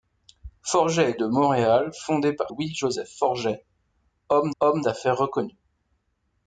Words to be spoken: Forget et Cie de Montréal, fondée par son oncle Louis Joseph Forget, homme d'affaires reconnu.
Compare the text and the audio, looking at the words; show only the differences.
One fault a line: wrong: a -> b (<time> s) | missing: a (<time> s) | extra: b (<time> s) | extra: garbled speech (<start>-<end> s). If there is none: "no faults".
missing: Cie (1.2 s)
missing: son oncle (2.5 s)
extra: homme (4.6 s)